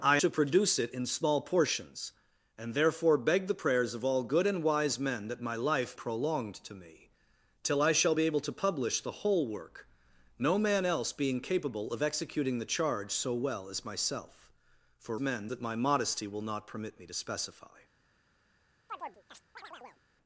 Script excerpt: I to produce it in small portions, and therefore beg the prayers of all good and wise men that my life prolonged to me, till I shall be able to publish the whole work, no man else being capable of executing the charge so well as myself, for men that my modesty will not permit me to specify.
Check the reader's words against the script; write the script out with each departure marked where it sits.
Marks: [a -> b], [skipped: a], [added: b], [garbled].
I to produce it in small portions, and therefore beg the prayers of all good and wise men that my life prolonged to me, till I shall be able to publish the whole work, no man else being capable of executing the charge so well as myself, for men that my modesty will not permit me to specify.